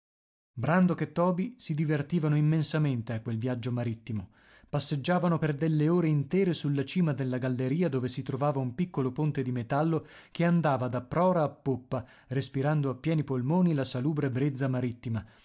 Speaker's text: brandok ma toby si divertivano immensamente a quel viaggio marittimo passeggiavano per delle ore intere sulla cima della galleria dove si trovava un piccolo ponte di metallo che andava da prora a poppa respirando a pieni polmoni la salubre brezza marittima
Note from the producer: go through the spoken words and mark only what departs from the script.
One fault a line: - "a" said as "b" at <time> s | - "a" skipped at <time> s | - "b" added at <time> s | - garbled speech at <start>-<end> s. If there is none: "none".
- "ma" said as "e" at 1.0 s